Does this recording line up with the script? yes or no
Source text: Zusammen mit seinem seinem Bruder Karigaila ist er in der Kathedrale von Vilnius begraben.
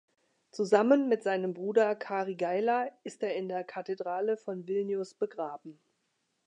no